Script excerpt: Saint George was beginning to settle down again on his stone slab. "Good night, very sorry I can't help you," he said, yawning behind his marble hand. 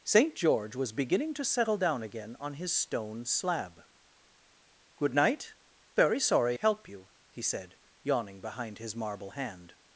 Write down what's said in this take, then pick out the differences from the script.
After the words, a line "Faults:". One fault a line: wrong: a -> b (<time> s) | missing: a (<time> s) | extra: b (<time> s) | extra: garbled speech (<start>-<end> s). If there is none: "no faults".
Saint George was beginning to settle down again on his stone slab. "Good night, very sorry help you," he said, yawning behind his marble hand.
Faults:
missing: I can't (6.6 s)